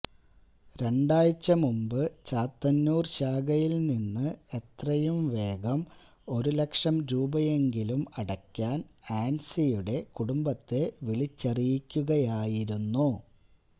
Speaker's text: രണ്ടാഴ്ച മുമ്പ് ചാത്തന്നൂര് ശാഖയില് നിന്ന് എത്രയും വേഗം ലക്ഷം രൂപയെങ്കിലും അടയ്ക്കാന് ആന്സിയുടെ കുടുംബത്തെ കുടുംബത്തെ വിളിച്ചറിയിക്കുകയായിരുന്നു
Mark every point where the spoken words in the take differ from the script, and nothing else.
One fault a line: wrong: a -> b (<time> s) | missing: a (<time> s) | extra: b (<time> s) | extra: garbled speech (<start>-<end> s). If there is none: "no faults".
extra: ഒരു (6.3 s)
missing: കുടുംബത്തെ (10.9 s)